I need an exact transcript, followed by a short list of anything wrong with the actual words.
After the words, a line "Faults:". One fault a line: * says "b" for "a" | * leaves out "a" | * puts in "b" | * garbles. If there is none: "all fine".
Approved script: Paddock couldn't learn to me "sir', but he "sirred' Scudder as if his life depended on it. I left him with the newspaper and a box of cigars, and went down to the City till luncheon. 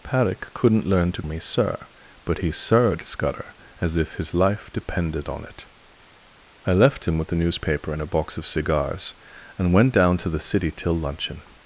Paddock couldn't learn to me "sir', but he "sirred' Scudder as if his life depended on it. I left him with the newspaper and a box of cigars, and went down to the City till luncheon.
Faults:
all fine